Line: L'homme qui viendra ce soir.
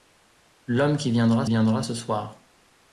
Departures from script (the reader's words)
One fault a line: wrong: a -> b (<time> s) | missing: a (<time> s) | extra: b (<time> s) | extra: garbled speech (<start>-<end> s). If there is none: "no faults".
extra: viendra (1.5 s)